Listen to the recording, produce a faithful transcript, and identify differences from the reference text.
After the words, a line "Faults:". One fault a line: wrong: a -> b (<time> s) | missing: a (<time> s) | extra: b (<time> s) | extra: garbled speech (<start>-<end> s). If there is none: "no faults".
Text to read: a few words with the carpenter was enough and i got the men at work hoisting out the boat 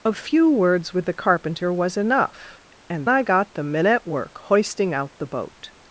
a few words with the carpenter was enough and i got the men at work hoisting out the boat
Faults:
no faults